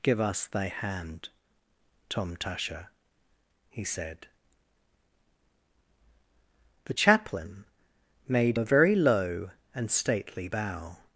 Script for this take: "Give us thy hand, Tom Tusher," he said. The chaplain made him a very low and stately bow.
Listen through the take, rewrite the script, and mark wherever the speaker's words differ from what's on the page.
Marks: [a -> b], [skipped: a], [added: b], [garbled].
"Give us thy hand, Tom Tusher," he said. The chaplain made [skipped: him] a very low and stately bow.